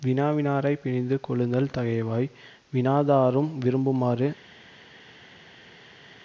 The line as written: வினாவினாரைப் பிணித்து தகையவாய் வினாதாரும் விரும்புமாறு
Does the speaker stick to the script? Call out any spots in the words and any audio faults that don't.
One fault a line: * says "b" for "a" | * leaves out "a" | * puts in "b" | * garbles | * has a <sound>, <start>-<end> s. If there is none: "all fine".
* puts in "கொள்ளுதல்"